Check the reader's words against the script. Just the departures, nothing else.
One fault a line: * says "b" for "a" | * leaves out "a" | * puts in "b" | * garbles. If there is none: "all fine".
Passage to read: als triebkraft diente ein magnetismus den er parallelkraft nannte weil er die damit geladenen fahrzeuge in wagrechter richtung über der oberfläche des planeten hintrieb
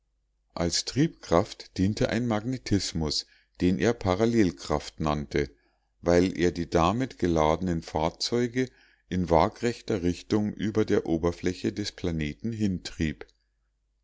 all fine